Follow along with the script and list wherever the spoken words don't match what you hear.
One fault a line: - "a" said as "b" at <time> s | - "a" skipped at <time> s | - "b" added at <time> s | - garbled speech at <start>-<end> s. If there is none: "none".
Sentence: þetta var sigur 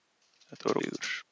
none